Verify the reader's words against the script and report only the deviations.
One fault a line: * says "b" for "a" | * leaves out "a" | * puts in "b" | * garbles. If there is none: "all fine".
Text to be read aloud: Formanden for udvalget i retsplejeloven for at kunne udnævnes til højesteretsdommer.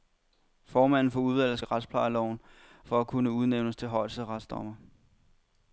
all fine